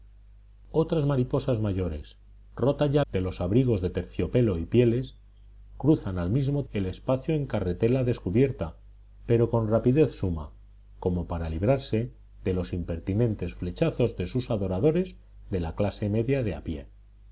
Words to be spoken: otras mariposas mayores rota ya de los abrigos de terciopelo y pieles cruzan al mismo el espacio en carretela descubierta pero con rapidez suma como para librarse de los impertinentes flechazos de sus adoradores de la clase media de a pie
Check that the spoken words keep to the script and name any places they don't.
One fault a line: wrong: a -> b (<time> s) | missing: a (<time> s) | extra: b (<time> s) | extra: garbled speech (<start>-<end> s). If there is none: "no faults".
no faults